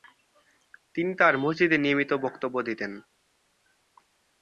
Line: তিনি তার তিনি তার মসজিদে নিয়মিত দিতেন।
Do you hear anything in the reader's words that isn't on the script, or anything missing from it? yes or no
yes